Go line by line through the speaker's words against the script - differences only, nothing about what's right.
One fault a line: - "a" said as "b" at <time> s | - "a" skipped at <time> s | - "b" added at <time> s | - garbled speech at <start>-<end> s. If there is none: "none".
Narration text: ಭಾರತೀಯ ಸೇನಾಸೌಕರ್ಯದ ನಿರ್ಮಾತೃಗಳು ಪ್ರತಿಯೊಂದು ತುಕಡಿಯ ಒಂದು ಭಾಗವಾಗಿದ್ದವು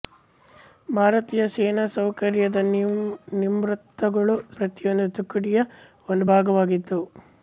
none